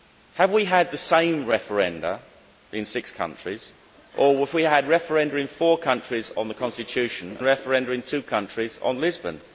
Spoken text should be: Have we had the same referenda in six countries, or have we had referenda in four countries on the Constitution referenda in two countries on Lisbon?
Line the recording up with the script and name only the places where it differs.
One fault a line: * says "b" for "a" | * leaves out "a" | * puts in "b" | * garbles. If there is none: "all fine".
all fine